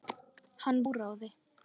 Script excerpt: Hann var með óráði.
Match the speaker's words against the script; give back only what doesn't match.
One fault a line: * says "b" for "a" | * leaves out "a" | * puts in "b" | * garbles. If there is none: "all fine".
* leaves out "var með"